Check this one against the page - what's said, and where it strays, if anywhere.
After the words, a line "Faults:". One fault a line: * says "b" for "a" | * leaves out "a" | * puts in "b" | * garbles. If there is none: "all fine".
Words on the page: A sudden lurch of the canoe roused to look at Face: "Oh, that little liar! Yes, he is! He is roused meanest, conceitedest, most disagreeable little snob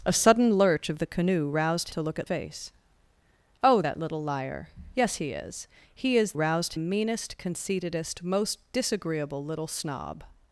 A sudden lurch of the canoe roused to look at Face: "Oh, that little liar! Yes, he is! He is roused meanest, conceitedest, most disagreeable little snob
Faults:
all fine